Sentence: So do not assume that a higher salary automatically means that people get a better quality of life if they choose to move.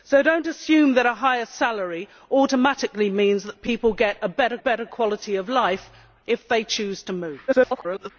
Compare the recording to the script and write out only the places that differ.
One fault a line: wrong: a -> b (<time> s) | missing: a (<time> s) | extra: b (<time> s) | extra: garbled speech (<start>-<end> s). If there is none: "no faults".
extra: better (4.6 s)
extra: garbled speech (7.5-8.1 s)